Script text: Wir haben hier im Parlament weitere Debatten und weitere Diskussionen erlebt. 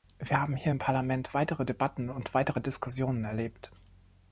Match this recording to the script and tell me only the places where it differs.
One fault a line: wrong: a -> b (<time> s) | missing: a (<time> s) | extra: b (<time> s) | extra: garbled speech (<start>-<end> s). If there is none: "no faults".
no faults